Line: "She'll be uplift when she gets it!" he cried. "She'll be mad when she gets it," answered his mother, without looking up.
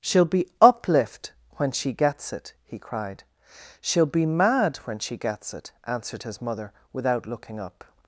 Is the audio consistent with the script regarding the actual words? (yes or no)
yes